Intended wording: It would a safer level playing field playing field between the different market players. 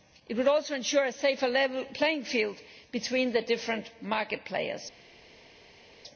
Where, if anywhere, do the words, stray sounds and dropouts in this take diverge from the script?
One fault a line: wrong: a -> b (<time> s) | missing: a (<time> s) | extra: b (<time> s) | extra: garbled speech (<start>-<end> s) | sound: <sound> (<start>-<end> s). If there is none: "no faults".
extra: also ensure (0.5 s)
missing: playing field (2.6 s)